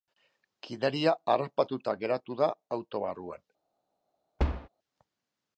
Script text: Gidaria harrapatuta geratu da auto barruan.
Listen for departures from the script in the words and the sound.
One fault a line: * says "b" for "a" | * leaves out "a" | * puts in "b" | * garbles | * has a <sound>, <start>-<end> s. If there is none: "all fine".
* has a thud, 4.4-4.7 s